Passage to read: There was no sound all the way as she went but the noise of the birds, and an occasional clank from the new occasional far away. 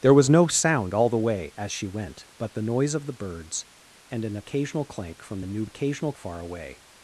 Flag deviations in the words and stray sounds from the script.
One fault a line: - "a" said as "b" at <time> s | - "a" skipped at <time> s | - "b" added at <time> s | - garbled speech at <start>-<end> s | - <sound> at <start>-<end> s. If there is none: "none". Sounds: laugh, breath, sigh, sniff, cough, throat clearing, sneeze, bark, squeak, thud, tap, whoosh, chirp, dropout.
none